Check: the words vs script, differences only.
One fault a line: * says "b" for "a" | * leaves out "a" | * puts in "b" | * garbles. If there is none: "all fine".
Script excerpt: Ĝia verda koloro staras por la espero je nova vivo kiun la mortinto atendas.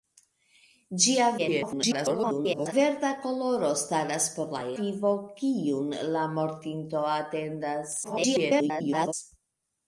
* garbles
* leaves out "espero je nova"
* garbles